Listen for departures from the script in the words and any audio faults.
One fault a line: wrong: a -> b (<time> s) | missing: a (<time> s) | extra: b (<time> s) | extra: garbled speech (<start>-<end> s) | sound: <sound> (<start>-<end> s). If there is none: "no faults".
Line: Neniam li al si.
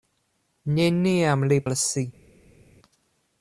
no faults